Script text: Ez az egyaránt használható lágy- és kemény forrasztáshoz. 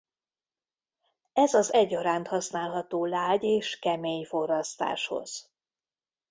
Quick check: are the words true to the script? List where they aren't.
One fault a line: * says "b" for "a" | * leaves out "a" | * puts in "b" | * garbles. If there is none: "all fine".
all fine